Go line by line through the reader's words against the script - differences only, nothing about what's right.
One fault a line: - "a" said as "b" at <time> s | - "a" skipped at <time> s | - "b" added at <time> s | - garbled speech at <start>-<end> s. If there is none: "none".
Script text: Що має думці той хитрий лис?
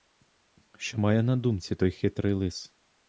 - "на" added at 1.2 s